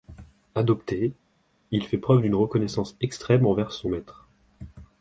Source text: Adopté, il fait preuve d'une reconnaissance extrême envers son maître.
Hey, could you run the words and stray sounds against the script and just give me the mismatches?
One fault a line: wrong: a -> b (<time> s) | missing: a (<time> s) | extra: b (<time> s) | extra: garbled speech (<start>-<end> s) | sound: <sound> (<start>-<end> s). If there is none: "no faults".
no faults